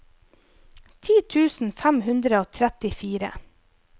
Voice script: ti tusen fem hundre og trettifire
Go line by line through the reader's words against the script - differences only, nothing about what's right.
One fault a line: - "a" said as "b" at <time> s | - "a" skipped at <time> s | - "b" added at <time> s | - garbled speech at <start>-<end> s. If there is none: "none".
none